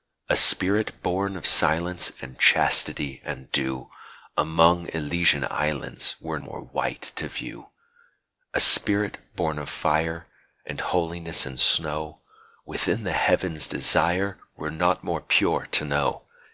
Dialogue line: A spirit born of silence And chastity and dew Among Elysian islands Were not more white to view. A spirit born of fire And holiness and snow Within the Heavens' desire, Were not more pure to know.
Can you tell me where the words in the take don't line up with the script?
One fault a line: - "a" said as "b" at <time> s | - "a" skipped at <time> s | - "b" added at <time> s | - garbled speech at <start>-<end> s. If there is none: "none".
- "not" skipped at 6.4 s